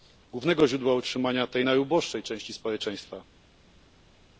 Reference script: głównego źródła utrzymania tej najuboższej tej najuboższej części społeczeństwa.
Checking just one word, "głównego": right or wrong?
right